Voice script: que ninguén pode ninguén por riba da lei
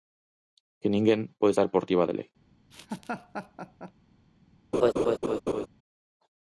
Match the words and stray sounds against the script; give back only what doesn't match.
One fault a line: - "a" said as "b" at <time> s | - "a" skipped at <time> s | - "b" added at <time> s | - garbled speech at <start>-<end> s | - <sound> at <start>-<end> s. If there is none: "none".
- "ninguén" said as "estar" at 1.5 s
- laugh at 2.7-3.9 s
- laugh at 4.7-5.7 s